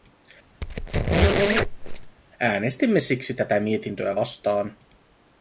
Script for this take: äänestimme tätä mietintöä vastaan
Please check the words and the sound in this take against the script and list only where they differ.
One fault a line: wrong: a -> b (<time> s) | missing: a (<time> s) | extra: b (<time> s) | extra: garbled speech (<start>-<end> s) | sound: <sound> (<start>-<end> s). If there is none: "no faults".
sound: squeak (0.6-2.2 s)
extra: siksi (3.0 s)